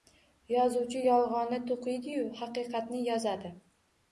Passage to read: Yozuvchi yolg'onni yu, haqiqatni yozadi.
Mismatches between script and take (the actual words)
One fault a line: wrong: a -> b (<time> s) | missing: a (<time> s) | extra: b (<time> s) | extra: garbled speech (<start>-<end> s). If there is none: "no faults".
extra: to'qiydi (1.7 s)